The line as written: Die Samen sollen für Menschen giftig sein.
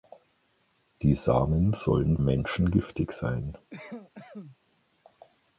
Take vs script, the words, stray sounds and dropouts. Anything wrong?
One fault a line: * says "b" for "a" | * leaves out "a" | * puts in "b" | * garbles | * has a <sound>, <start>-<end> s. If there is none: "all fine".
* leaves out "für"
* has a cough, 3.7-4.6 s